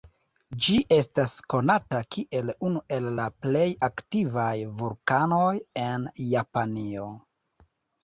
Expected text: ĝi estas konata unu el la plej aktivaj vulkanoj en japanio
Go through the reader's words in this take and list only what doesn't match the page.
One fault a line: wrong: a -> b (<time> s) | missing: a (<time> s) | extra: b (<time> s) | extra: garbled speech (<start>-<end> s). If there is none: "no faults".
extra: kiel (2.2 s)